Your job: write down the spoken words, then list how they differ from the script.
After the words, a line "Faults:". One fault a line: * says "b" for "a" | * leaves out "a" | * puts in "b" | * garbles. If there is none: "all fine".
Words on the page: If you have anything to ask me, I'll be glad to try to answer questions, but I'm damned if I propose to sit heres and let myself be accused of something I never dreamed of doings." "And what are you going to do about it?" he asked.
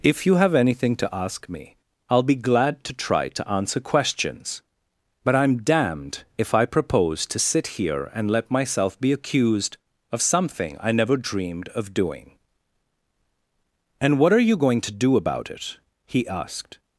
If you have anything to ask me, I'll be glad to try to answer questions, but I'm damned if I propose to sit here and let myself be accused of something I never dreamed of doing." "And what are you going to do about it?" he asked.
Faults:
* says "here" for "heres"
* says "doing" for "doings"